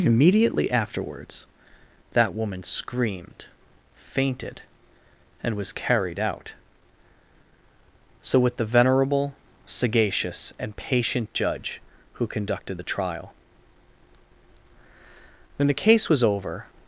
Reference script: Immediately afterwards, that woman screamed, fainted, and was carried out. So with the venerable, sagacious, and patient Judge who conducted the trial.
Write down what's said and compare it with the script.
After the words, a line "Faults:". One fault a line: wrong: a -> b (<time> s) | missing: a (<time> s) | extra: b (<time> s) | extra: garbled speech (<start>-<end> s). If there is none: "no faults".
Immediately afterwards, that woman screamed, fainted, and was carried out. So with the venerable, sagacious, and patient Judge who conducted the trial. When the case was over
Faults:
extra: When the case was over (15.6 s)